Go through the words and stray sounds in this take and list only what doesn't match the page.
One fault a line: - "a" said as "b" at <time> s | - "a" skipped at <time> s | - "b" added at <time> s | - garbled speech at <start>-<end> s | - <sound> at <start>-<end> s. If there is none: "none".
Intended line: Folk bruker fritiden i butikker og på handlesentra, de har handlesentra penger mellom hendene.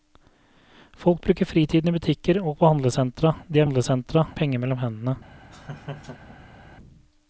- laugh at 5.5-6.6 s